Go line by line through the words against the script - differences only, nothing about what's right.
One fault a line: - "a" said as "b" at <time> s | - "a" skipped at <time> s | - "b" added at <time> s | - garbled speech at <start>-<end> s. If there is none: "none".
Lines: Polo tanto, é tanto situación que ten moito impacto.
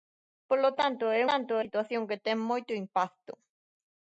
none